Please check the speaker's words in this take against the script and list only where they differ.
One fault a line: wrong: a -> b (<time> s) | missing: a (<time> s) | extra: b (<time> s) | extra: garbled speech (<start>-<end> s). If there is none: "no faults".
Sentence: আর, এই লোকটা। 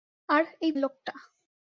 no faults